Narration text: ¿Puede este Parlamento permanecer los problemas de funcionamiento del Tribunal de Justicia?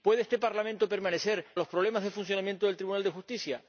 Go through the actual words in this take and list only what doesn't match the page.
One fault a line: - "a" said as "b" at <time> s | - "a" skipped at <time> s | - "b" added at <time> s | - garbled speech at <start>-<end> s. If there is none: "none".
none